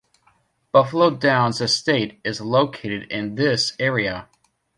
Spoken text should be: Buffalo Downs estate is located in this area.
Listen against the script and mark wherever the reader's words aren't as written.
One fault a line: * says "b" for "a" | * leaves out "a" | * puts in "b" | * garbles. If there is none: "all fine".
all fine